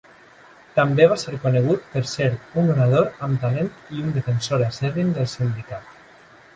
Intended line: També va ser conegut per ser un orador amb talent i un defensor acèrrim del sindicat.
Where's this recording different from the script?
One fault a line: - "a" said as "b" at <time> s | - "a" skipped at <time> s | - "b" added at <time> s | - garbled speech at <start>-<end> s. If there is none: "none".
none